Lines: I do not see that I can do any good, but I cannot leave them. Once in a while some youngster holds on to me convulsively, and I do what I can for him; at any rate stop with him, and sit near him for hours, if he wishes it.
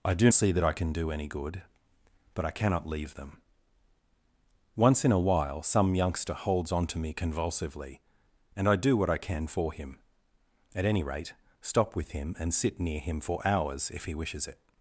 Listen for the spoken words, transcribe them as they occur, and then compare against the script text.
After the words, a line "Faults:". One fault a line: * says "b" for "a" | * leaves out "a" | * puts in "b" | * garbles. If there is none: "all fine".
I do see that I can do any good, but I cannot leave them. Once in a while some youngster holds on to me convulsively, and I do what I can for him; at any rate stop with him, and sit near him for hours, if he wishes it.
Faults:
* leaves out "not"